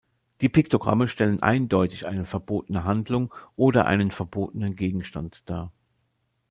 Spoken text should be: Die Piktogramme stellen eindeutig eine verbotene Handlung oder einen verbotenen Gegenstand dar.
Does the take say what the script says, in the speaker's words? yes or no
yes